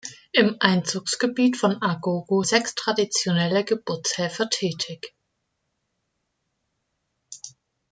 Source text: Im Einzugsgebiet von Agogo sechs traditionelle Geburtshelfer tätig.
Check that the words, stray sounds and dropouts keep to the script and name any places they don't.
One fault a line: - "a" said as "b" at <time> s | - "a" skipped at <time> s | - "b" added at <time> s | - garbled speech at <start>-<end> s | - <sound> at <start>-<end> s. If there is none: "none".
none